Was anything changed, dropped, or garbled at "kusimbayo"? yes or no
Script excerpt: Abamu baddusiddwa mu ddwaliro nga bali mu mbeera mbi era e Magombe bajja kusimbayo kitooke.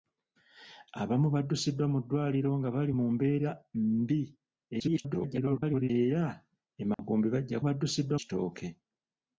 yes